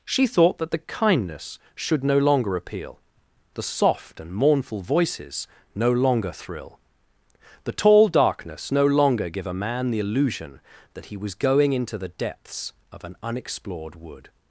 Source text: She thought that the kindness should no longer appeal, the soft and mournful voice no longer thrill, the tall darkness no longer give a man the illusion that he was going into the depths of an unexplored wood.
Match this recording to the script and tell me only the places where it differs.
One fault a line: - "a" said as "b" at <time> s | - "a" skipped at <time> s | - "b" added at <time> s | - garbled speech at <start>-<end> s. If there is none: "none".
- "voice" said as "voices" at 4.8 s